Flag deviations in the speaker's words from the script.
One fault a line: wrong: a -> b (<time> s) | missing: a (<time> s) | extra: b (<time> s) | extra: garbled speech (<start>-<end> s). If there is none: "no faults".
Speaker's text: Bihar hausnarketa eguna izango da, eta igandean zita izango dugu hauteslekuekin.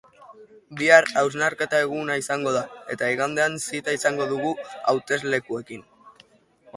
no faults